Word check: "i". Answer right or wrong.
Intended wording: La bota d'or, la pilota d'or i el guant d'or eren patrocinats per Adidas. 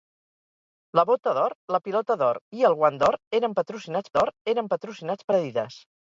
right